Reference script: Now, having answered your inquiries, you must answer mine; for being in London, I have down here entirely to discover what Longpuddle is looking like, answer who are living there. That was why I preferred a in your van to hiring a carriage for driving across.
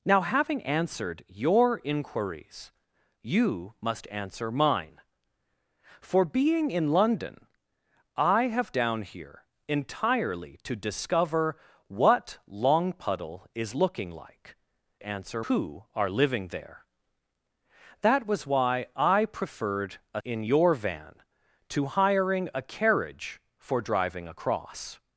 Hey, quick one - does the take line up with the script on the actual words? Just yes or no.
yes